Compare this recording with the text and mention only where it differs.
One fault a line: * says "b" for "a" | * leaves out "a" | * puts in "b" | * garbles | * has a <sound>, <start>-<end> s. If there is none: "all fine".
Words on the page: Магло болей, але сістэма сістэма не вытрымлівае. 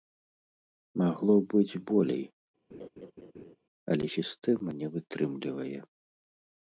* puts in "быць"
* has a laugh, 2.7-3.6 s
* leaves out "сістэма"